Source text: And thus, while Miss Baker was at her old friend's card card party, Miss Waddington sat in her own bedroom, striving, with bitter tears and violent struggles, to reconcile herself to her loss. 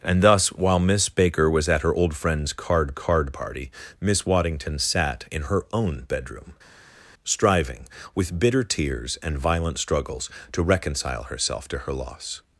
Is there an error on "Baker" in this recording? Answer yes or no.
no